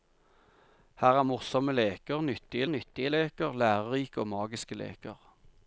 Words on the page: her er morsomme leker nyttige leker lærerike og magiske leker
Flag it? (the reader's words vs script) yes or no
yes